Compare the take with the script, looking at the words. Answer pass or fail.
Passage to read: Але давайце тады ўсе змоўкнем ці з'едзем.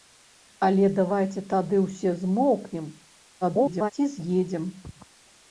fail